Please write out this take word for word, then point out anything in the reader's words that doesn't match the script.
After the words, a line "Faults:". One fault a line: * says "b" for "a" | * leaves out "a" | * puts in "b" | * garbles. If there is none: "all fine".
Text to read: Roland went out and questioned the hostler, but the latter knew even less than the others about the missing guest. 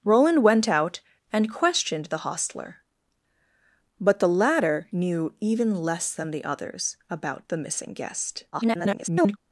Roland went out and questioned the hostler, but the latter knew even less than the others about the missing guest. [garbled]
Faults:
* garbles